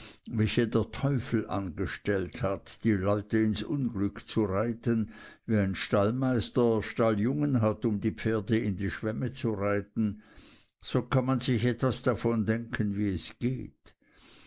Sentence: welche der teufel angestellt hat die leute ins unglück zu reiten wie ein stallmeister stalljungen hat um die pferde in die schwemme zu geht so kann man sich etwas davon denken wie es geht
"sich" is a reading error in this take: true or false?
false